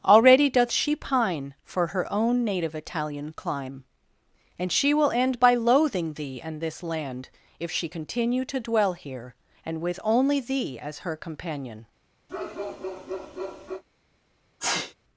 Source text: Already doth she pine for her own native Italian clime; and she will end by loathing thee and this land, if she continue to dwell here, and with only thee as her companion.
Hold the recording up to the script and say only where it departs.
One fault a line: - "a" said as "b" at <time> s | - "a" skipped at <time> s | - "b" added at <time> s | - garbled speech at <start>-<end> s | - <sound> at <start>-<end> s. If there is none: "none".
- bark at 12.3-13.8 s
- sneeze at 14.6-14.9 s